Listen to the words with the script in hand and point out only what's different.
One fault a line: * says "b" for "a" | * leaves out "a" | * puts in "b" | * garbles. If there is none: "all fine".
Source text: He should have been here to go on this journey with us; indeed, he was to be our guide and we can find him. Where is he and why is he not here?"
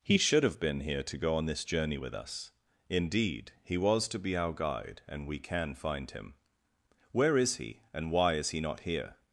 all fine